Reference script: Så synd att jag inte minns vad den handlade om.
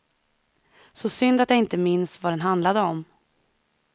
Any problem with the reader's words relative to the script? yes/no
no